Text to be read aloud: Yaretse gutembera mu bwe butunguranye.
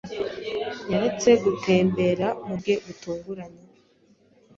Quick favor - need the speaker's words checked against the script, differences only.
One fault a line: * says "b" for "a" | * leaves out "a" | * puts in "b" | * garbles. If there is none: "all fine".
all fine